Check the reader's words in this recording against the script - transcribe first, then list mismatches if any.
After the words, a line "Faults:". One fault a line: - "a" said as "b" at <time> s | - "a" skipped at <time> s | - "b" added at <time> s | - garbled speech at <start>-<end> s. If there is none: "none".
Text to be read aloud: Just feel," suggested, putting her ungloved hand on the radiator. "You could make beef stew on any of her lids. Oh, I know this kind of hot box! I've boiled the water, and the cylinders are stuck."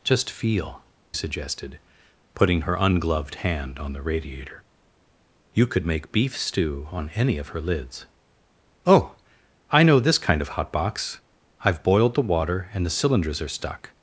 Just feel," suggested, putting her ungloved hand on the radiator. "You could make beef stew on any of her lids. Oh, I know this kind of hot box! I've boiled the water, and the cylinders are stuck."
Faults:
none